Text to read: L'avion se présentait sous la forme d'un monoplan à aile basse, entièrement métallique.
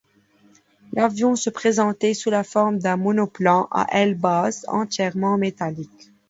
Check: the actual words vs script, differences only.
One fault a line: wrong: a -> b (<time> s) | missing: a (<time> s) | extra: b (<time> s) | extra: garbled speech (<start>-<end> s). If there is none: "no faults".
no faults